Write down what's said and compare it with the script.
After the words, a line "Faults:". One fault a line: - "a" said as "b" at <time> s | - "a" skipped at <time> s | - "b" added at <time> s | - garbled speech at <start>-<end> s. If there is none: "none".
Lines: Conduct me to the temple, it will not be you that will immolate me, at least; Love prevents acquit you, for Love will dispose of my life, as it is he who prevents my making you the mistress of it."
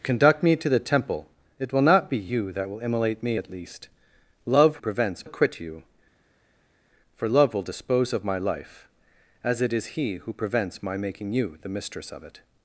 Conduct me to the temple, it will not be you that will immolate me, at least; Love prevents acquit you, for Love will dispose of my life, as it is he who prevents my making you the mistress of it."
Faults:
none